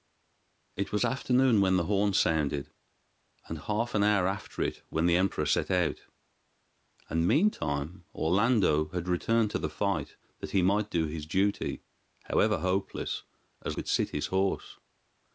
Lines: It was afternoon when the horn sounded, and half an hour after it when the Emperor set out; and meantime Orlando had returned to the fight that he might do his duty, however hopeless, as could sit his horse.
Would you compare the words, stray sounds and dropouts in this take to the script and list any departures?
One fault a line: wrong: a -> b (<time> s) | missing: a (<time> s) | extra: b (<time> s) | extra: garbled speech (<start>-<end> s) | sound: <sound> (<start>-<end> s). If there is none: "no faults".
no faults